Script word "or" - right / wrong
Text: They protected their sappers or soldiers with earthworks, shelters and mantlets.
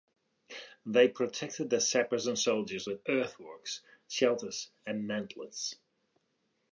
wrong